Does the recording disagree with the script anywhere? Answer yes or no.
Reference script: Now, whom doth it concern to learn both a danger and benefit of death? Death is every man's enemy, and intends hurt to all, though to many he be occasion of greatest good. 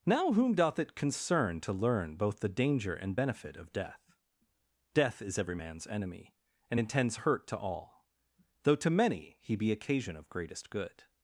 yes